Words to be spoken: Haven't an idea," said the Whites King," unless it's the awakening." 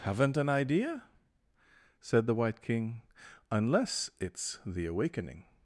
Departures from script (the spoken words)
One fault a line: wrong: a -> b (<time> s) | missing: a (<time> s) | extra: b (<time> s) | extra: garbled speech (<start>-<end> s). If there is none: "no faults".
wrong: Whites -> White (2.3 s)